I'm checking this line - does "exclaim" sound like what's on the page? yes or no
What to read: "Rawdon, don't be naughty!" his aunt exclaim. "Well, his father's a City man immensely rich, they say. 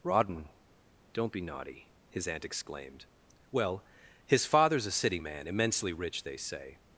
no